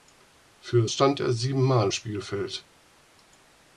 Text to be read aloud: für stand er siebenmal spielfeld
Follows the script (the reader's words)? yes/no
yes